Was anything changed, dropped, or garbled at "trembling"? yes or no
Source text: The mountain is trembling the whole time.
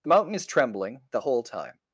no